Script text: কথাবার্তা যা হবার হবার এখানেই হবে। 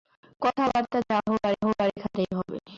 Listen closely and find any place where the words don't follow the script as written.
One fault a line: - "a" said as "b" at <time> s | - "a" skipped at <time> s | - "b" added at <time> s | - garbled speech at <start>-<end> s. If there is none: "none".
none